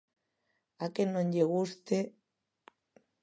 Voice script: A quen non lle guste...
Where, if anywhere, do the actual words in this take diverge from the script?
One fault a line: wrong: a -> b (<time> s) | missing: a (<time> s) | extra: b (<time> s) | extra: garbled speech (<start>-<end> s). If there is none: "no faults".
no faults